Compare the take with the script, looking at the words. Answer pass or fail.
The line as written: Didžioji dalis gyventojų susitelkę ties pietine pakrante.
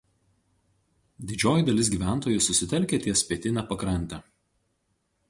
pass